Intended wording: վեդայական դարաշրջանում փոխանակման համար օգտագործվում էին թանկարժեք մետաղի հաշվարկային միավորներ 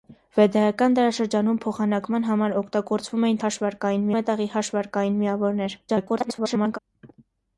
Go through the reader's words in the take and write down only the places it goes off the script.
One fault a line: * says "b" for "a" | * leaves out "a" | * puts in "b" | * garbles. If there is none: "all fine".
* says "հաշվարկային" for "թանկարժեք"
* garbles